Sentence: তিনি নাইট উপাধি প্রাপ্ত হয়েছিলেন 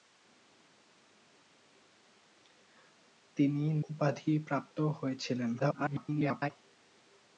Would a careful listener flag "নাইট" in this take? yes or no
yes